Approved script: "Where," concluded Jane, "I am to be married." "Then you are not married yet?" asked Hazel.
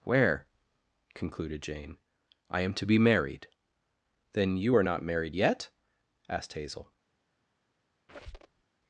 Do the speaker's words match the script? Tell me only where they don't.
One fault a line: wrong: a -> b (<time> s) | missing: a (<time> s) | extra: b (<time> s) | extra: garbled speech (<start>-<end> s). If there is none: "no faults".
no faults